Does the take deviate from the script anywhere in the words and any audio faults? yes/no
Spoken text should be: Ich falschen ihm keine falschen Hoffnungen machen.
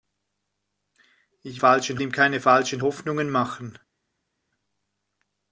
no